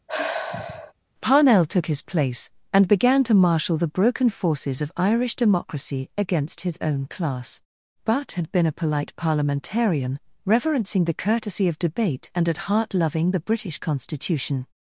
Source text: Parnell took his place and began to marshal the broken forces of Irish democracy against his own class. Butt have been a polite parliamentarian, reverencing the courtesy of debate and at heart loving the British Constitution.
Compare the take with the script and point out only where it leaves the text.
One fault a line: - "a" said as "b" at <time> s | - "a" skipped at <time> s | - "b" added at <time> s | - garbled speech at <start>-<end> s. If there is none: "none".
- "have" said as "had" at 8.3 s